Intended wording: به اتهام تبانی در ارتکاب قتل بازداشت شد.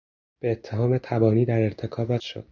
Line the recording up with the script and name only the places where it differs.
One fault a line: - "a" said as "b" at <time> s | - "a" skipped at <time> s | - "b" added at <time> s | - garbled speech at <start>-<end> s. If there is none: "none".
- "قتل بازداشت" skipped at 2.2 s